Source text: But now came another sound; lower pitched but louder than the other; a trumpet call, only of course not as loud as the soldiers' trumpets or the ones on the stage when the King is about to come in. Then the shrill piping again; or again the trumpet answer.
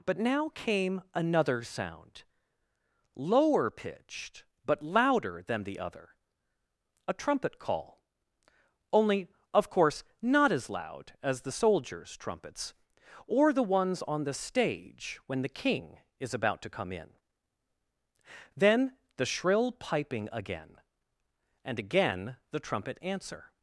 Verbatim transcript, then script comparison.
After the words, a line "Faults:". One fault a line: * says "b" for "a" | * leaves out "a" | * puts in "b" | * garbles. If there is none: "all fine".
But now came another sound; lower pitched but louder than the other; a trumpet call, only of course not as loud as the soldiers' trumpets or the ones on the stage when the King is about to come in. Then the shrill piping again; and again the trumpet answer.
Faults:
* says "and" for "or"